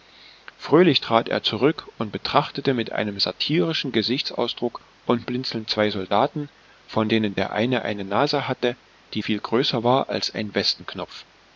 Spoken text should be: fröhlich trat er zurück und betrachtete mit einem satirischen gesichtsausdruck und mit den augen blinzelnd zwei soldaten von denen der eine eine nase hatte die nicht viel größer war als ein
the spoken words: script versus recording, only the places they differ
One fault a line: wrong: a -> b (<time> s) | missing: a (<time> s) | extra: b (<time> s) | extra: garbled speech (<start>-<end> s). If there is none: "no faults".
missing: mit den augen (5.3 s)
missing: nicht (9.2 s)